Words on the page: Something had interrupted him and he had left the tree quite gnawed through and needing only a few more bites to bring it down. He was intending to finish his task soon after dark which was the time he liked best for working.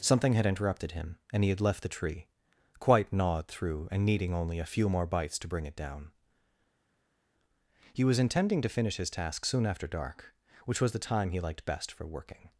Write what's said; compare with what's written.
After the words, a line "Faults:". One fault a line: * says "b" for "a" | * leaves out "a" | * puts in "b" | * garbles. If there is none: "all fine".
Something had interrupted him and he had left the tree quite gnawed through and needing only a few more bites to bring it down. He was intending to finish his task soon after dark which was the time he liked best for working.
Faults:
all fine